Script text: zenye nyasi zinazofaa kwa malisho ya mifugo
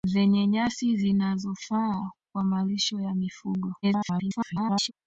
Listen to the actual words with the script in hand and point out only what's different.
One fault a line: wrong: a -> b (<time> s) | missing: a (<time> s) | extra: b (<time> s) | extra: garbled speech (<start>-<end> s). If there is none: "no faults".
extra: garbled speech (3.8-4.9 s)